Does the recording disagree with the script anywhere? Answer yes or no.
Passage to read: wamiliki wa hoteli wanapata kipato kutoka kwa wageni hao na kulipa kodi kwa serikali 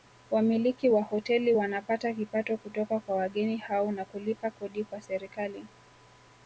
no